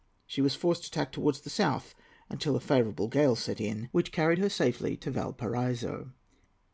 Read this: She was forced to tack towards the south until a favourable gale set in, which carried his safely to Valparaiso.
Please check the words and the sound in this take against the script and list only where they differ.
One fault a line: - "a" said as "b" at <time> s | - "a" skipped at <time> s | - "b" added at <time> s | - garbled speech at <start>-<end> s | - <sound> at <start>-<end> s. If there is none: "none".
- "his" said as "her" at 4.4 s